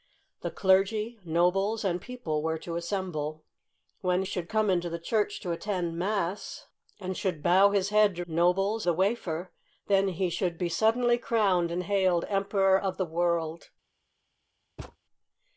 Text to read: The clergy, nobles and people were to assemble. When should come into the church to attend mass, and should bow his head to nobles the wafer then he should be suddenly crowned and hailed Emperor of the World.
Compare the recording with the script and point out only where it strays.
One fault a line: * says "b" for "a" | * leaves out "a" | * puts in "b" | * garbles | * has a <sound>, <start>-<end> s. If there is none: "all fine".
* has a thud, 14.8-15.0 s